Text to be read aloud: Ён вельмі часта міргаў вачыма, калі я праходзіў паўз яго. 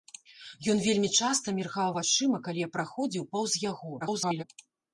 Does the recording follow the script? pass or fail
fail